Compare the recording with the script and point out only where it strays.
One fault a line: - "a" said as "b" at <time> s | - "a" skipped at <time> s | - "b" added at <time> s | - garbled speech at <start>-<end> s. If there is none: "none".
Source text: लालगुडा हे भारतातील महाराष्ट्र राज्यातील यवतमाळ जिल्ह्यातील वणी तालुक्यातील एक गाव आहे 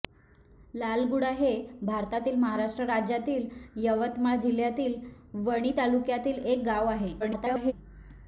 - garbled speech at 7.2-7.7 s